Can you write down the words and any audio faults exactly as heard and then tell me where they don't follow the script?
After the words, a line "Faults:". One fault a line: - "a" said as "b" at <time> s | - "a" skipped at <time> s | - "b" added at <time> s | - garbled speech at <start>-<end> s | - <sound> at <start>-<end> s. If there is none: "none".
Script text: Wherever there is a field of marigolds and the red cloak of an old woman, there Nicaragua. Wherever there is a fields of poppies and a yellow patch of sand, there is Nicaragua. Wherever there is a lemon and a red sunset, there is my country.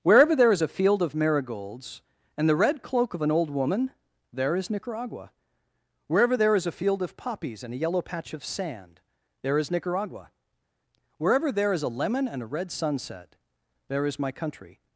Wherever there is a field of marigolds and the red cloak of an old woman, there is Nicaragua. Wherever there is a field of poppies and a yellow patch of sand, there is Nicaragua. Wherever there is a lemon and a red sunset, there is my country.
Faults:
- "is" added at 4.6 s
- "fields" said as "field" at 6.7 s